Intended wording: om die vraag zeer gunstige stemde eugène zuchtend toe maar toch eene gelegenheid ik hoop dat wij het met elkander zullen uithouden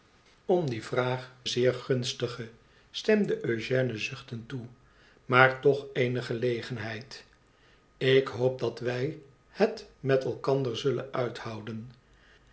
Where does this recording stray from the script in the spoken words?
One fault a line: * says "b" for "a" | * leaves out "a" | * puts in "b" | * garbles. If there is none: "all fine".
all fine